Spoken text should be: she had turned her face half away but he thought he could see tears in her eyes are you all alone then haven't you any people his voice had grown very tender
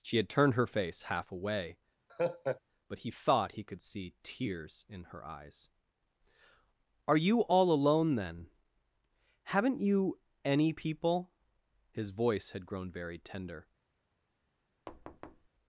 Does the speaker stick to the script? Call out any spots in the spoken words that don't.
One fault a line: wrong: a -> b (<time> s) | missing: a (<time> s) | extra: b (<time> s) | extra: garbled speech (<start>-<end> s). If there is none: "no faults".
no faults